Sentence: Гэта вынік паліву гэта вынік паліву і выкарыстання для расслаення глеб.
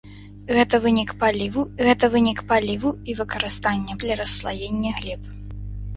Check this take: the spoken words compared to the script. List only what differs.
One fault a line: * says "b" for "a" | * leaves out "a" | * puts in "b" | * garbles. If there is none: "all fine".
all fine